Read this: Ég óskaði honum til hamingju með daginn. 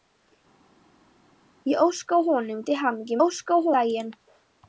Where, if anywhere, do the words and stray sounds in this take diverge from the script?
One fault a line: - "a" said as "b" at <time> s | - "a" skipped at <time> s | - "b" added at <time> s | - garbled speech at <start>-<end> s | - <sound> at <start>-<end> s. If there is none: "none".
- "með" said as "óskaði" at 3.2 s